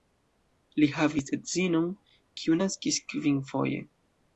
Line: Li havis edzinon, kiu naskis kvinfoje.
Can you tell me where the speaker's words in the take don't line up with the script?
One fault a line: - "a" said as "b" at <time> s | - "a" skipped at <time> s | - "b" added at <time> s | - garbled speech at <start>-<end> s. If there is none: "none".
none